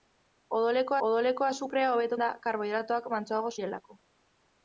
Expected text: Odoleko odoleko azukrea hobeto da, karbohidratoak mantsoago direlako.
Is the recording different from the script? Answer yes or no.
no